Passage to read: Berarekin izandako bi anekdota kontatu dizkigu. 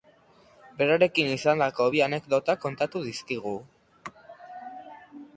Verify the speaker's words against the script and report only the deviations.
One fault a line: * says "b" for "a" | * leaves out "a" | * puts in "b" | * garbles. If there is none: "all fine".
all fine